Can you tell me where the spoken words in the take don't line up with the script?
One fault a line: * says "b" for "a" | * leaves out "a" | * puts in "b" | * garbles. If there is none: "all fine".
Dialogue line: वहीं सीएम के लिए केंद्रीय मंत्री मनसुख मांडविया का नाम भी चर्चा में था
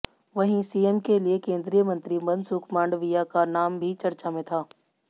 all fine